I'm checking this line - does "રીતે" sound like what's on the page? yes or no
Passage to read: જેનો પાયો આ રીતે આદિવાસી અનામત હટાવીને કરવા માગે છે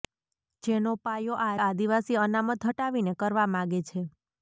no